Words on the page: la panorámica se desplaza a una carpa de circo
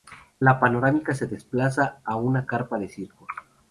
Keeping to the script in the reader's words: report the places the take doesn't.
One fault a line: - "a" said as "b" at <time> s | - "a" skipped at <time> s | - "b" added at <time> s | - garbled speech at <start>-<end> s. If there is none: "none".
none